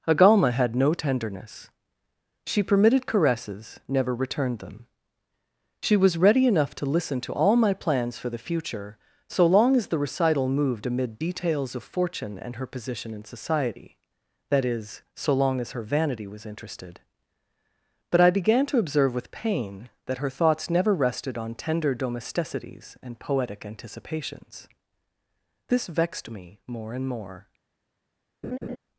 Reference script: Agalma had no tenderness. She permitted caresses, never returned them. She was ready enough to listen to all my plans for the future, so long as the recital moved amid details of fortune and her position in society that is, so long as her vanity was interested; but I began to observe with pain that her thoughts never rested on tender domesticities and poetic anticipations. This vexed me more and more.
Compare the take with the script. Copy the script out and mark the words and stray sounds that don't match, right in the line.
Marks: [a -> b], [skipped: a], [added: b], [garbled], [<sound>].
Agalma had no tenderness. She permitted caresses, never returned them. She was ready enough to listen to all my plans for the future, so long as the recital moved amid details of fortune and her position in society that is, so long as her vanity was interested; but I began to observe with pain that her thoughts never rested on tender domesticities and poetic anticipations. This vexed me more and more. [laugh]